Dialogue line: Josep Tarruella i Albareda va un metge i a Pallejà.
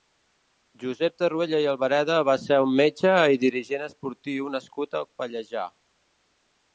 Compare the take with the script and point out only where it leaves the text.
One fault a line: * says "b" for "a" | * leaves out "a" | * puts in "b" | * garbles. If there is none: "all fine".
* puts in "ser"
* puts in "dirigent esportiu nascut"